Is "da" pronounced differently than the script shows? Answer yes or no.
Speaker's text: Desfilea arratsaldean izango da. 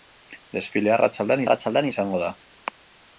no